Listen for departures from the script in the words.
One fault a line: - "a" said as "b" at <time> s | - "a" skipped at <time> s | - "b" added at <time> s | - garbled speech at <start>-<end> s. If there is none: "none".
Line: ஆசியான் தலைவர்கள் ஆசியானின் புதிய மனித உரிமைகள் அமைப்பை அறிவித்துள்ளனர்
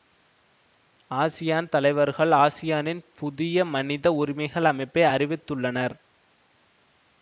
none